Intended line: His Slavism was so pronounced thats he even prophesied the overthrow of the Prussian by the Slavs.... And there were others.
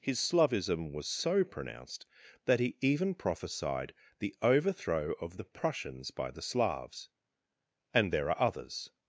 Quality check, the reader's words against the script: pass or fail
fail